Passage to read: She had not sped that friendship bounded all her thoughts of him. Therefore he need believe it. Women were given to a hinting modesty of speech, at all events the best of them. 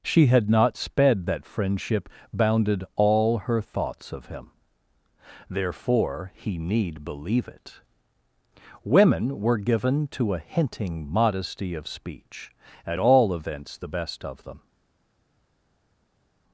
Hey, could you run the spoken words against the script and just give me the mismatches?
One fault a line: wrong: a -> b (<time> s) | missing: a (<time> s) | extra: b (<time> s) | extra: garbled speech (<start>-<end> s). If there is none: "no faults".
no faults